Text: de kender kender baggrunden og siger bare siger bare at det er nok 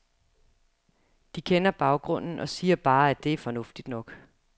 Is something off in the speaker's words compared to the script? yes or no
yes